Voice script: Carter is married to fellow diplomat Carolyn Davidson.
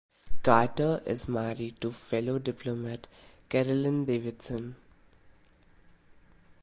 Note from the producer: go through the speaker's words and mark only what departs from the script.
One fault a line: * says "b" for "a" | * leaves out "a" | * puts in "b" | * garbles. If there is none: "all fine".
all fine